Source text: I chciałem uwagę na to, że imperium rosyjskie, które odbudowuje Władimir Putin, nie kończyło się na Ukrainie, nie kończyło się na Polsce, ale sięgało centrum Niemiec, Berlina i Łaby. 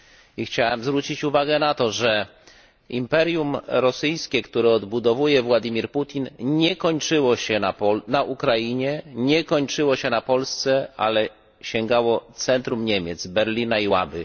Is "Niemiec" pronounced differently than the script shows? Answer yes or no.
no